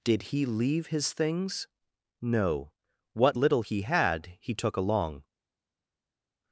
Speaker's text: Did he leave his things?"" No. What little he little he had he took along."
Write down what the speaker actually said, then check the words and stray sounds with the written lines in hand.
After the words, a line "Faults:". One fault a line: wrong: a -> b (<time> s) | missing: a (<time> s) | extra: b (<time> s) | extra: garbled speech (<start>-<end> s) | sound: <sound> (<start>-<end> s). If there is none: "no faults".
Did he leave his things?"" No. What little he had he took along."
Faults:
missing: little he (3.8 s)